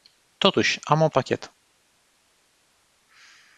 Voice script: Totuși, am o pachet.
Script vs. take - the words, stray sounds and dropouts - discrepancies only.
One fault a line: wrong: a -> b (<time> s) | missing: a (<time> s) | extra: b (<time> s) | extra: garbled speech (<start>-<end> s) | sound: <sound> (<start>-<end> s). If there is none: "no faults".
no faults